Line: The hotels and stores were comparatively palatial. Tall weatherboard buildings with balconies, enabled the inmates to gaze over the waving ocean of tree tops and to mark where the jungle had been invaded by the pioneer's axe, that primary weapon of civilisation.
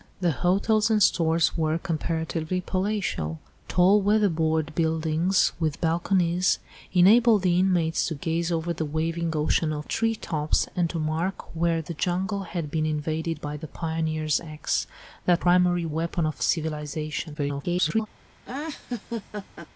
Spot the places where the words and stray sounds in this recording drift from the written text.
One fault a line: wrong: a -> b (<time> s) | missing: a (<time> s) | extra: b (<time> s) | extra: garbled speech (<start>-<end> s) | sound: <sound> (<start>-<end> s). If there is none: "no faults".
extra: garbled speech (17.3-18.1 s)
sound: laugh (18.4-19.7 s)